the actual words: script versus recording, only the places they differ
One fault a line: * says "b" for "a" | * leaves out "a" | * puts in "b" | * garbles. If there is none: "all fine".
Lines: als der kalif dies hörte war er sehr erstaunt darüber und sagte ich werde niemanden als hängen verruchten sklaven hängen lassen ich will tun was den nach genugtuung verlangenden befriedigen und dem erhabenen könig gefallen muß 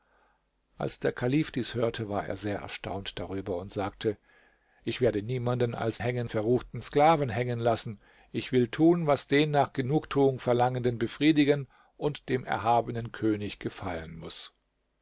all fine